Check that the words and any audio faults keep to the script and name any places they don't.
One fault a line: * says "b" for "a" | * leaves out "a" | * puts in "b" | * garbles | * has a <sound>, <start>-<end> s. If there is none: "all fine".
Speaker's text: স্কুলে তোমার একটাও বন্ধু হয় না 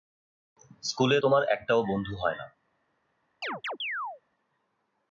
* has a chirp, 3.4-4.2 s